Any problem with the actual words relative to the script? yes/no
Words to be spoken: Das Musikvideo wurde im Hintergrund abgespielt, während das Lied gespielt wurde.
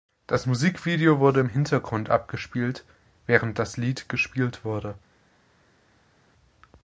no